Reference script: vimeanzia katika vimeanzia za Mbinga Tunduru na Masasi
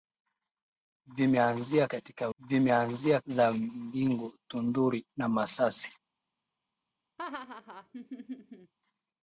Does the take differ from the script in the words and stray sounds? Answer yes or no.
yes